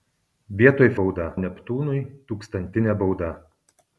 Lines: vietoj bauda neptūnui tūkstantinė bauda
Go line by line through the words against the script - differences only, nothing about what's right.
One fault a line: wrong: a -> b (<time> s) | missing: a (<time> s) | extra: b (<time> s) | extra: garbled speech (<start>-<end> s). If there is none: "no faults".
no faults